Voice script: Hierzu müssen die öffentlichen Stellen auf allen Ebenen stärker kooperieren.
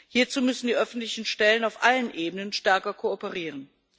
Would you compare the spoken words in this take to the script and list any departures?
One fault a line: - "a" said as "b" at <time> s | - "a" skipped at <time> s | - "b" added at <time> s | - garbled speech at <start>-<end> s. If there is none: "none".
none